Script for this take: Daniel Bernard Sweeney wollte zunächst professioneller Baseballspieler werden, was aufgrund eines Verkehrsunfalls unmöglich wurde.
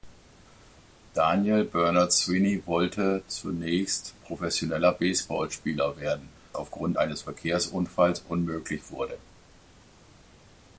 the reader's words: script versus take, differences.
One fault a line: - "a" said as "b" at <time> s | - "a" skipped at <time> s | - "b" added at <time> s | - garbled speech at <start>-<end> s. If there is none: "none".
- "was" skipped at 6.3 s